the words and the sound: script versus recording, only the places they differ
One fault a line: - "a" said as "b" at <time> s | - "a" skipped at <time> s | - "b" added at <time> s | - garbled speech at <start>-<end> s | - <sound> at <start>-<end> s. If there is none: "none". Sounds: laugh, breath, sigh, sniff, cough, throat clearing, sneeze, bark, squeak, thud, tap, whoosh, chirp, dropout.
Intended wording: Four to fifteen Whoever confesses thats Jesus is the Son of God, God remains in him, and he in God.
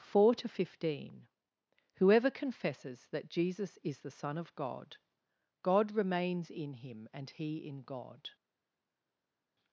- "thats" said as "that" at 3.1 s